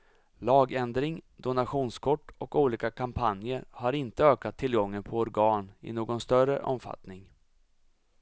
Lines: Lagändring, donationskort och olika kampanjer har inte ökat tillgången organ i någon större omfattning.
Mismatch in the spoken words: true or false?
true